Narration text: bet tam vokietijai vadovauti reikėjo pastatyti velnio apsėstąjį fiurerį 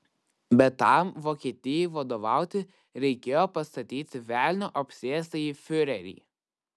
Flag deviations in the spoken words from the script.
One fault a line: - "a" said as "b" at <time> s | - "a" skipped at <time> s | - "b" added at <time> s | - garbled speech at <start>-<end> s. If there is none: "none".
none